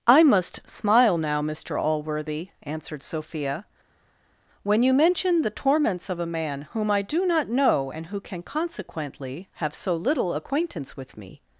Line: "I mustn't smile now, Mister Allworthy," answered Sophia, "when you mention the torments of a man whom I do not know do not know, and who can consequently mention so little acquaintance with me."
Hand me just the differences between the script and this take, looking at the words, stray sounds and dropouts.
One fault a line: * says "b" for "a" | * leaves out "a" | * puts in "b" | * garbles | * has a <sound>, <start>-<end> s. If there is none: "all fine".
* says "must" for "mustn't"
* leaves out "do not know"
* says "have" for "mention"